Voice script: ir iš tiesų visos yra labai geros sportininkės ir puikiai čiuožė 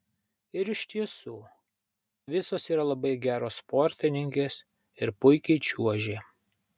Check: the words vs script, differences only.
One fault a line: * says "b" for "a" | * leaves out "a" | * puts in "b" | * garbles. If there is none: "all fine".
all fine